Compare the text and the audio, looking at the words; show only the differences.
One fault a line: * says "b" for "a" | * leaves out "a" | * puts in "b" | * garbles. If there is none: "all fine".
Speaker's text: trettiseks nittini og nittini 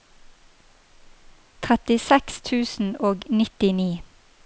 * says "tusen" for "nittini"